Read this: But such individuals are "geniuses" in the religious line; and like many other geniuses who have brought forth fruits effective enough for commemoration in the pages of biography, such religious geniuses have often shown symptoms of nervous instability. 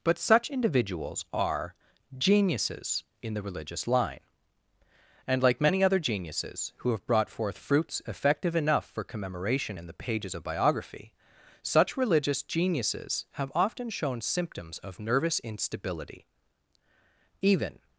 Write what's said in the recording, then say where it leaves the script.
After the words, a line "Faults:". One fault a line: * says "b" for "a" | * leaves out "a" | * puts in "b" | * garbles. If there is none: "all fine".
But such individuals are "geniuses" in the religious line; and like many other geniuses who have brought forth fruits effective enough for commemoration in the pages of biography, such religious geniuses have often shown symptoms of nervous instability. Even
Faults:
* puts in "Even"